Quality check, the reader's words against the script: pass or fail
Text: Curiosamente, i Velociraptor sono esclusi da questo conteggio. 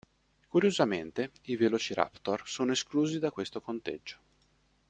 pass